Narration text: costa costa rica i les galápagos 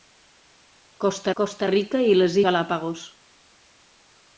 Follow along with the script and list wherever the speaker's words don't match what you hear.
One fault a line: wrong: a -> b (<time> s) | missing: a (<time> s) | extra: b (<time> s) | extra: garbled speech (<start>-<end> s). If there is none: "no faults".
no faults